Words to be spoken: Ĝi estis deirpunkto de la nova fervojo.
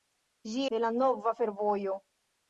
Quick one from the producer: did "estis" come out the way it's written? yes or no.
no